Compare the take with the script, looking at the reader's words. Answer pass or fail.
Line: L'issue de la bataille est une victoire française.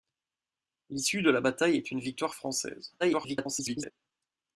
fail